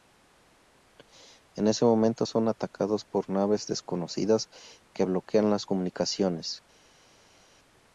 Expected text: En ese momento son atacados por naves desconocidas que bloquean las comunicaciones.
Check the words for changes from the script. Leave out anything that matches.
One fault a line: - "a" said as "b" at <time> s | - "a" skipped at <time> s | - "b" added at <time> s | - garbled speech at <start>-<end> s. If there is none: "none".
none